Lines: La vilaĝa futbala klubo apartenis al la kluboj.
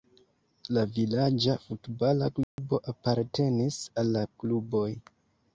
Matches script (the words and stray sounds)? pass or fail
fail